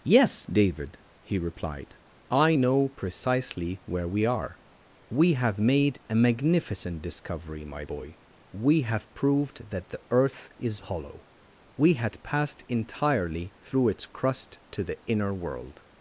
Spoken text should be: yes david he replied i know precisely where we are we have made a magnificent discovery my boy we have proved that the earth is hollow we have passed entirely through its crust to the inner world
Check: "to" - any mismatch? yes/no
no